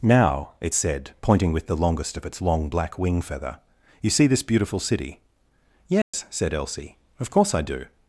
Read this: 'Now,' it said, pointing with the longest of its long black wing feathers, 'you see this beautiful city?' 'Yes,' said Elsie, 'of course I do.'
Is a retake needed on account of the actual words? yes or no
yes